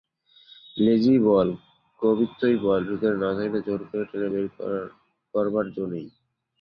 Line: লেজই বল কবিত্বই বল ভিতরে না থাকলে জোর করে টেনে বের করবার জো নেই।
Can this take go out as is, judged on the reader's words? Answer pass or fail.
pass